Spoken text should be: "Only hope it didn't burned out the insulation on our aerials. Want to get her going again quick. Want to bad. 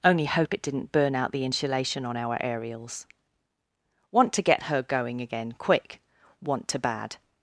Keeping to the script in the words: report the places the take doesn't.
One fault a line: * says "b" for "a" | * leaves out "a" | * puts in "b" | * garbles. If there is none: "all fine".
* says "burn" for "burned"